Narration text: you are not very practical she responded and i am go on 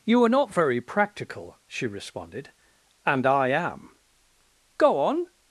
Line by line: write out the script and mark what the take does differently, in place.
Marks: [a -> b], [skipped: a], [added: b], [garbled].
you are not very practical she responded and i am go on